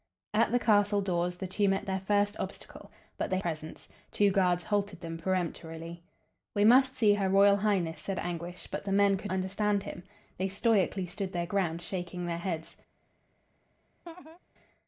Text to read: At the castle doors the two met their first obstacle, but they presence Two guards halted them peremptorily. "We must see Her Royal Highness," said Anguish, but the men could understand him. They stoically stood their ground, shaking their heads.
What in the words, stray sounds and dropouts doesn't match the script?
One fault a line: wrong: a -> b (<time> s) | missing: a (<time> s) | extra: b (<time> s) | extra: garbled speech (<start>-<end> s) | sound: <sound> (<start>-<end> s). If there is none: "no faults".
sound: laugh (14.1-14.4 s)